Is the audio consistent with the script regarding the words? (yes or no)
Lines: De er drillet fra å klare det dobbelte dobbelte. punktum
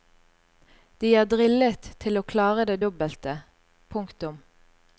no